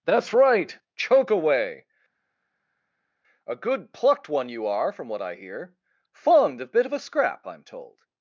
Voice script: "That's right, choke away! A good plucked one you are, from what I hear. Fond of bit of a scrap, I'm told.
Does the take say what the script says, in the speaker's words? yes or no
yes